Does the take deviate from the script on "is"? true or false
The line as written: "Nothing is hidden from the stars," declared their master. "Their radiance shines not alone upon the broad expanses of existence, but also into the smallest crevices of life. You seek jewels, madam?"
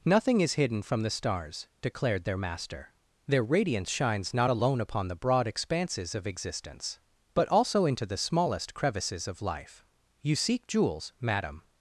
false